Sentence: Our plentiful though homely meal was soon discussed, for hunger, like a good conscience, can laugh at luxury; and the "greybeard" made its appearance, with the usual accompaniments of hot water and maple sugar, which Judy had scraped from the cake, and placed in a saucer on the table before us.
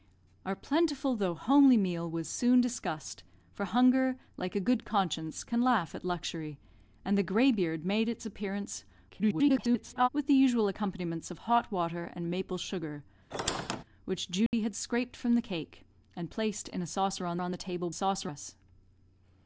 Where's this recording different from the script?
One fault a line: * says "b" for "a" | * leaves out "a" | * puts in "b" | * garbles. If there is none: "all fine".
* garbles
* puts in "on"
* says "saucer" for "before"